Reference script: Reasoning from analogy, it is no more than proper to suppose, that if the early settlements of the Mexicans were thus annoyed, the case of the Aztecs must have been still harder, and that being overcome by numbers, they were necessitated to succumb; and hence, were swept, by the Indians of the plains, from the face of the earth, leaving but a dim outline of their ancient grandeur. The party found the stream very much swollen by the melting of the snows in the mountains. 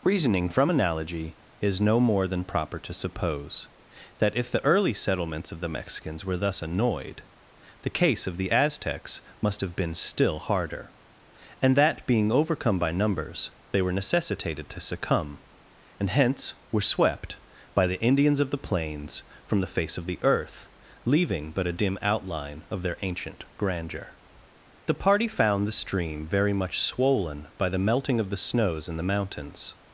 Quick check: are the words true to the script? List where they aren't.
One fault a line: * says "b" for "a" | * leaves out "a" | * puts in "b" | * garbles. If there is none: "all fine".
* leaves out "it"